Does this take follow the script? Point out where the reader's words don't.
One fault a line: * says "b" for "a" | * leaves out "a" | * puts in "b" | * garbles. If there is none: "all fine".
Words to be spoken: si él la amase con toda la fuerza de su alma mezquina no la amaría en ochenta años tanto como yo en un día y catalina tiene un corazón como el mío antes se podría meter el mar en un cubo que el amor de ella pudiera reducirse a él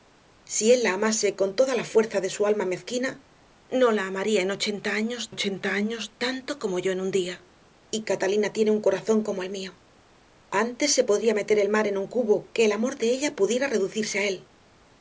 * puts in "ochenta años"